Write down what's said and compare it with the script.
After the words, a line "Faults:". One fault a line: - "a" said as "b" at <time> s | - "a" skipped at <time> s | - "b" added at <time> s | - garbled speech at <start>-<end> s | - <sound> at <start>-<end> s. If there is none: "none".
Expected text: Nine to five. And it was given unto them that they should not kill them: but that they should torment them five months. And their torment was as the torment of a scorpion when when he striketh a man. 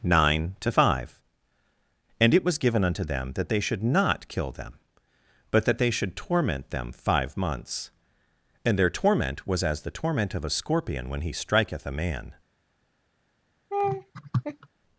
Nine to five. And it was given unto them that they should not kill them: but that they should torment them five months. And their torment was as the torment of a scorpion when he striketh a man.
Faults:
- "when" skipped at 11.2 s
- laugh at 13.7-14.7 s